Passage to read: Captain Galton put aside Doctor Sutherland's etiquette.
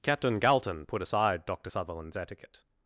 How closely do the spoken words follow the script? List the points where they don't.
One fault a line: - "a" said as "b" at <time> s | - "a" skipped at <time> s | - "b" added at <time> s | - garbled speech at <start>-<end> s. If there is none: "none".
none